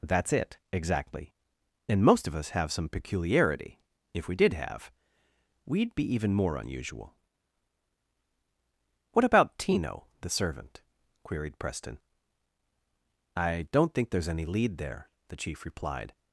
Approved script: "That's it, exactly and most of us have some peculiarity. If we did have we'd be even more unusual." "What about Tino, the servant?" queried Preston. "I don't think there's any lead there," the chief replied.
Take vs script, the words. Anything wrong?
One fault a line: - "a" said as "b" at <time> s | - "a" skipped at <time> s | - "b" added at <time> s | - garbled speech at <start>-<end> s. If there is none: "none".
none